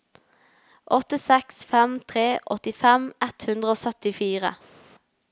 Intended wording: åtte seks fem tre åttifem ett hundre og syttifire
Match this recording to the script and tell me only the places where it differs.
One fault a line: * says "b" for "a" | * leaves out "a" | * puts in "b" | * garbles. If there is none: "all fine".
all fine